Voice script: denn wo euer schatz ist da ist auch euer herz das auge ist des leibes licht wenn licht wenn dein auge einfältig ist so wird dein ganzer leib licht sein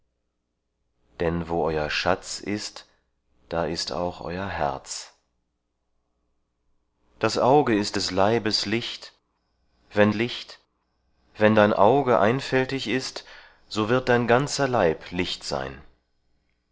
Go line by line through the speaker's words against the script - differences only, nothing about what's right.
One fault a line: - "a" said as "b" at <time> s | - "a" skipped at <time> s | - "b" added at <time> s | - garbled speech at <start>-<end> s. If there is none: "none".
none